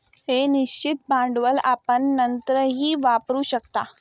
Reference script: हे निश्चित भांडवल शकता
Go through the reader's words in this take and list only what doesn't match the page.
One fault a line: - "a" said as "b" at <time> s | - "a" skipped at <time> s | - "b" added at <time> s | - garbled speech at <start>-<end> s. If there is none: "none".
- "आपण नंतरही वापरू" added at 1.6 s